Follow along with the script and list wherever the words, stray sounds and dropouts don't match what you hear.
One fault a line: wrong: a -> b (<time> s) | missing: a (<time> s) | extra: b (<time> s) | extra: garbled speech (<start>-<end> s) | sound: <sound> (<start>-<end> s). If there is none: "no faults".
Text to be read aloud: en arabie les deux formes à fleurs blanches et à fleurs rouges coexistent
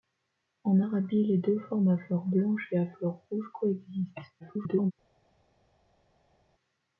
extra: garbled speech (4.4-4.9 s)